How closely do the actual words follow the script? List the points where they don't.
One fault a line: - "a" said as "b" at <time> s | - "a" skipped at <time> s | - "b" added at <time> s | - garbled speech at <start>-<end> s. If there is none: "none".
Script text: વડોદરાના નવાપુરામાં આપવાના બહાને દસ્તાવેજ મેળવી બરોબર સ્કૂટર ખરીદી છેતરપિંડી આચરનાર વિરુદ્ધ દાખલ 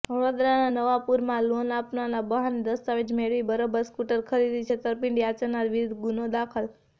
- "લોન" added at 1.5 s
- "ગુનો" added at 6.0 s